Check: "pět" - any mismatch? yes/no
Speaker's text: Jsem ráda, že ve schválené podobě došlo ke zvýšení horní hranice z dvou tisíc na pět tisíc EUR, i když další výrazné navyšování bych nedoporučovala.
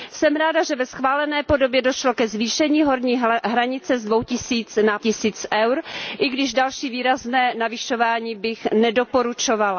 yes